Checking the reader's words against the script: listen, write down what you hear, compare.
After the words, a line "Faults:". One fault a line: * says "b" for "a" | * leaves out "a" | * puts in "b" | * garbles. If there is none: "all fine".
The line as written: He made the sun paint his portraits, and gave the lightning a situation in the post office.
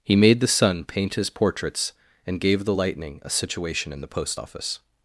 He made the sun paint his portraits, and gave the lightning a situation in the post office.
Faults:
all fine